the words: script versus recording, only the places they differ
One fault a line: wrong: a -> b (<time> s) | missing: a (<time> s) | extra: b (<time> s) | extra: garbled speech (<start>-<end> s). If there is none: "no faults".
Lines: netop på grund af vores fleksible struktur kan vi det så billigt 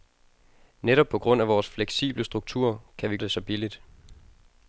no faults